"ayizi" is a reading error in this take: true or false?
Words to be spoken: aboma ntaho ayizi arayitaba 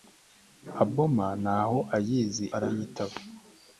false